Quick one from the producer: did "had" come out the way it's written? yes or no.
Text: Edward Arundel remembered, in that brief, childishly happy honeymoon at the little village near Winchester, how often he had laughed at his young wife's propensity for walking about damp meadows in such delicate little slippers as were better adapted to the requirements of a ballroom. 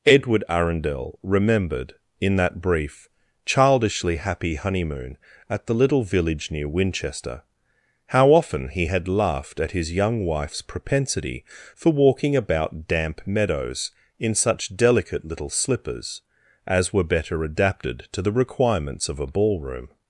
yes